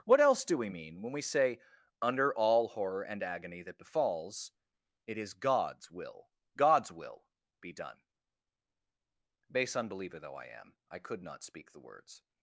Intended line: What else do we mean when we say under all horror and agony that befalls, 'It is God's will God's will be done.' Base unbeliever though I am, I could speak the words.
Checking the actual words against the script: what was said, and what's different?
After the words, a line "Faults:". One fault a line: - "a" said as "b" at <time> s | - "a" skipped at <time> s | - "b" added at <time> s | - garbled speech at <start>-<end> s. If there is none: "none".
What else do we mean when we say under all horror and agony that befalls, 'It is God's will God's will be done.' Base unbeliever though I am, I could not speak the words.
Faults:
- "not" added at 11.2 s